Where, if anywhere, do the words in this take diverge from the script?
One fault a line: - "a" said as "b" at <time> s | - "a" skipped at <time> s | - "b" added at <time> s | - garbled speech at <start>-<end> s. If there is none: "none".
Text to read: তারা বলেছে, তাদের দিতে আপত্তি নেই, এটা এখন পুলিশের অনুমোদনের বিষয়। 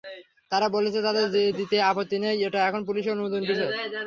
none